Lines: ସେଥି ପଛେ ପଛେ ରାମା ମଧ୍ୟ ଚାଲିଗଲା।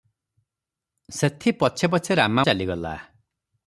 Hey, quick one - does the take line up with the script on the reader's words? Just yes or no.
no